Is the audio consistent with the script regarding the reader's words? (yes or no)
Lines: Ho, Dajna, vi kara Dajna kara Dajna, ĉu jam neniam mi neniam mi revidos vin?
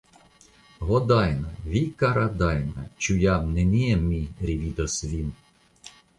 no